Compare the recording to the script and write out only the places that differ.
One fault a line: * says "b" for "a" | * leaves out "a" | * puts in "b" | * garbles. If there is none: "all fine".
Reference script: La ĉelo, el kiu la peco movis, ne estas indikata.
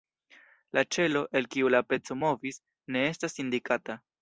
all fine